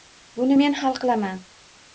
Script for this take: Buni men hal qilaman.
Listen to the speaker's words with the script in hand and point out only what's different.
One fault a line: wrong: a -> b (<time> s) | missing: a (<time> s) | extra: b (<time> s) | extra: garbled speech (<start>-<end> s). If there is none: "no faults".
no faults